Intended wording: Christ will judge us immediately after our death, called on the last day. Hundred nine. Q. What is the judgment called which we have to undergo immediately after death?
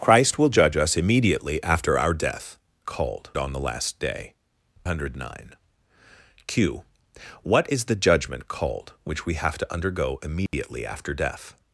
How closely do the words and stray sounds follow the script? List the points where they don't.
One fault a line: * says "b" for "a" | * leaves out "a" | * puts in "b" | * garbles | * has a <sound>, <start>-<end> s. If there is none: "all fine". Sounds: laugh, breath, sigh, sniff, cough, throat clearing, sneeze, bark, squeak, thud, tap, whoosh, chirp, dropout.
* has a dropout, 10.5-10.5 s